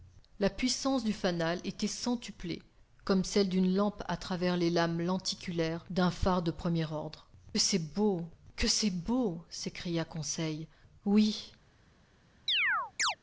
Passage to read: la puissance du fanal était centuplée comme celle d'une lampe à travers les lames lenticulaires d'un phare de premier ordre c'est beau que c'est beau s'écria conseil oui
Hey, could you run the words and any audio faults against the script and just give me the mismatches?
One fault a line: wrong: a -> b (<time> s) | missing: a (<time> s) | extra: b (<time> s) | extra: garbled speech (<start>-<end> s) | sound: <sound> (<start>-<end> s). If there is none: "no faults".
sound: chirp (12.5-13.2 s)